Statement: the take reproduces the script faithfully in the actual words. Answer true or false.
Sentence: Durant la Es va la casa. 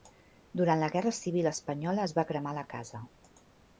false